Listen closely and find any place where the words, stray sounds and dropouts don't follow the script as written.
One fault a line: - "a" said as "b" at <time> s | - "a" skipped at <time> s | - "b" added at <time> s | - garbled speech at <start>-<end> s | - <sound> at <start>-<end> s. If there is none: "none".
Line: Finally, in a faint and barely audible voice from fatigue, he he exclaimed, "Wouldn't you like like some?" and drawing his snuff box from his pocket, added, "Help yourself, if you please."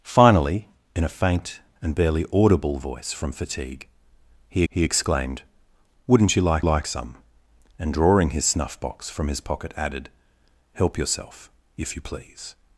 none